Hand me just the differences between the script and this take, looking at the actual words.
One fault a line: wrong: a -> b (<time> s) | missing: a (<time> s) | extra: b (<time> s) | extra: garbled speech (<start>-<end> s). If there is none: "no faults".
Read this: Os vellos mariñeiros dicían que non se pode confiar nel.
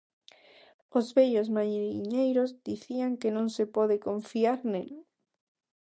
no faults